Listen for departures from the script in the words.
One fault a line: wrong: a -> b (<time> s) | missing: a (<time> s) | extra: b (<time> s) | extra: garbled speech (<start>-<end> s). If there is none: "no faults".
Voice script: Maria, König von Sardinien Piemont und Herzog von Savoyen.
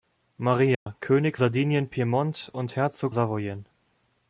missing: von (1.4 s)
missing: von (3.1 s)